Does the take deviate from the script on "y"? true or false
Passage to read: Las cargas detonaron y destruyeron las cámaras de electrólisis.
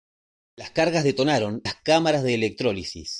true